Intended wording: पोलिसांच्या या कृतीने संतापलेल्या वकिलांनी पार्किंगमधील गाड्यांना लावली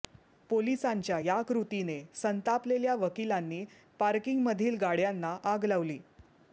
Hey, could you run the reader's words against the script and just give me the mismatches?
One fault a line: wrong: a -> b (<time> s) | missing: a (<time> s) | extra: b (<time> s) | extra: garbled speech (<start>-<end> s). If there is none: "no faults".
extra: आग (5.4 s)